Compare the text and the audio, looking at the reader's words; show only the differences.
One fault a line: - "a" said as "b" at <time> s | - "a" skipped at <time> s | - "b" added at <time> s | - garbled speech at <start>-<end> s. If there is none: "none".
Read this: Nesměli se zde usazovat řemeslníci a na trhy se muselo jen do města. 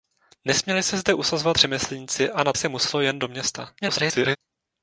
- "trhy" skipped at 2.5 s
- garbled speech at 3.8-4.4 s